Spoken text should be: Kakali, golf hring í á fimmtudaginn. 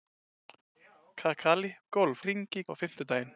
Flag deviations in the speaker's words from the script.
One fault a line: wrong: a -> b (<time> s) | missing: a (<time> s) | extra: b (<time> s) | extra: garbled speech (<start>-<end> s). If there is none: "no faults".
no faults